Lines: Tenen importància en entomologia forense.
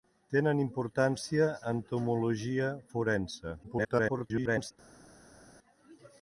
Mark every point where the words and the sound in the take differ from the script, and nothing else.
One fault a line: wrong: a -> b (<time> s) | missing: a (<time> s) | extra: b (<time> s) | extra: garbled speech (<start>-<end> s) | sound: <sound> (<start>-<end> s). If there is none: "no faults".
missing: en (1.5 s)
extra: garbled speech (3.6-4.7 s)